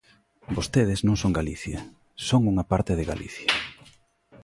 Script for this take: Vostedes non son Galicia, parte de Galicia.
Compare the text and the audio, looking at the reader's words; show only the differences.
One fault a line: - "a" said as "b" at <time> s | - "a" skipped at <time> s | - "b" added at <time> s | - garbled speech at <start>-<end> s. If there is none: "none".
- "son unha" added at 2.3 s